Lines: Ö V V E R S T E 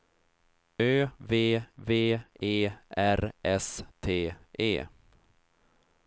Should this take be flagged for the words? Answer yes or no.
no